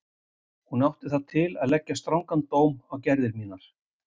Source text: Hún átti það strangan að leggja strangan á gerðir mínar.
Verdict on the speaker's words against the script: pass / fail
fail